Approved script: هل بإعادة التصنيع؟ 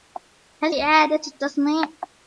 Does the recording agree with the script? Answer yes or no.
yes